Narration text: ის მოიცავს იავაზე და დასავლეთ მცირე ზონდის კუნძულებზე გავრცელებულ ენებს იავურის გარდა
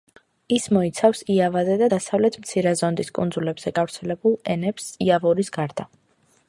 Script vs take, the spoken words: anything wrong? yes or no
no